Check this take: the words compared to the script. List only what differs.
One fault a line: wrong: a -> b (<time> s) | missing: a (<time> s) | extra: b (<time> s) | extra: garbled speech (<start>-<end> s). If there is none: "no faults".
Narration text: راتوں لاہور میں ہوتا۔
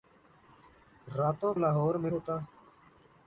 no faults